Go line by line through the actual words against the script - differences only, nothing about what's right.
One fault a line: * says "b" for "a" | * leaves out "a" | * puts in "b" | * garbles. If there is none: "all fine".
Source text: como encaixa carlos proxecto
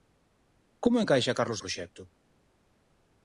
all fine